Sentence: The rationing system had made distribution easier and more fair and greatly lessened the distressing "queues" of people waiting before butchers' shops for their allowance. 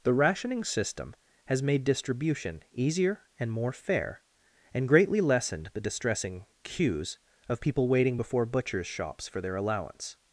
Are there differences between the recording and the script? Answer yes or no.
yes